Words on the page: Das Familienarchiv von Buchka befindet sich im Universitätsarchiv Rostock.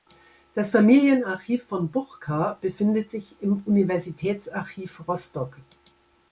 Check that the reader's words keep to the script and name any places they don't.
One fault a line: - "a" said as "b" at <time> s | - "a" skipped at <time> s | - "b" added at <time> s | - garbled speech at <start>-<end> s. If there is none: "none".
none